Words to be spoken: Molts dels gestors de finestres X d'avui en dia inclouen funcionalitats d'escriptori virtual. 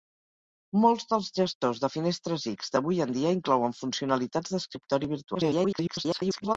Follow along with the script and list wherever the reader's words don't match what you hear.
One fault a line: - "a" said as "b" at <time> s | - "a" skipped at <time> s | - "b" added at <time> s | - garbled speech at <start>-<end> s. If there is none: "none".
- garbled speech at 5.3-6.6 s